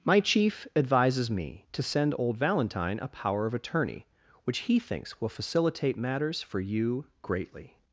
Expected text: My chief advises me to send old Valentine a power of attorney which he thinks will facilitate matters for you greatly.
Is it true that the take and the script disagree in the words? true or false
false